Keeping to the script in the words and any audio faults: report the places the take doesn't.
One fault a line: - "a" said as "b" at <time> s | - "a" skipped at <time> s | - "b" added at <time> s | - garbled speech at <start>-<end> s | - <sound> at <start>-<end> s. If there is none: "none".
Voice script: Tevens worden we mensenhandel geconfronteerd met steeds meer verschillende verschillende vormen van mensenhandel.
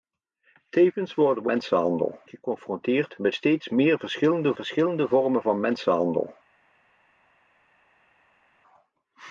none